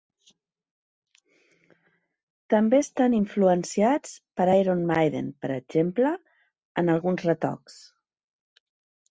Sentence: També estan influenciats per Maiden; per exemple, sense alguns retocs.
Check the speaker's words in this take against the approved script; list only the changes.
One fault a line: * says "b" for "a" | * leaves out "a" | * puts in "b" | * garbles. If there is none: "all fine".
* puts in "Iron"
* says "en" for "sense"